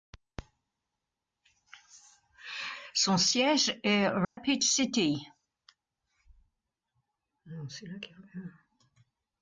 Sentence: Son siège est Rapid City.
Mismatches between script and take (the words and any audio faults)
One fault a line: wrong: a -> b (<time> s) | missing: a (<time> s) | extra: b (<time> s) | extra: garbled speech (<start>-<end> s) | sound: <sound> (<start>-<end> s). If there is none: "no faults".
sound: dropout (4.2-4.4 s)